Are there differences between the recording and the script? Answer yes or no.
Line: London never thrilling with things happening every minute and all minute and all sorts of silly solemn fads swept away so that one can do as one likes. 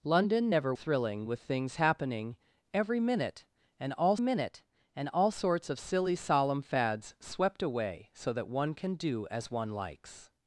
no